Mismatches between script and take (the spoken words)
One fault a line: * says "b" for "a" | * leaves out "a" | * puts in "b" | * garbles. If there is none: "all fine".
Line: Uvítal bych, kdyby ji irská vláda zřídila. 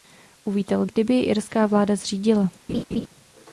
* leaves out "bych"